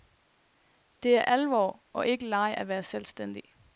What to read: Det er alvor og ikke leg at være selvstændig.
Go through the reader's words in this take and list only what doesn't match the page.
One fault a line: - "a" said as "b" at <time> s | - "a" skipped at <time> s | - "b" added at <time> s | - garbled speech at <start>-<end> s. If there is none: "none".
none